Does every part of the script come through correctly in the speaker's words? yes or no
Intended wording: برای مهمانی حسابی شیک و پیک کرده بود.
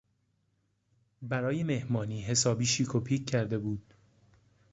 yes